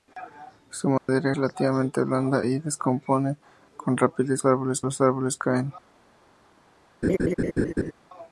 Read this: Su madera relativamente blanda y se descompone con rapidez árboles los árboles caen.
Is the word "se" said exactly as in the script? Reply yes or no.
yes